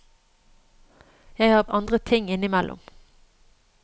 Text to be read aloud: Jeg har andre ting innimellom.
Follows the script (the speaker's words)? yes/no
yes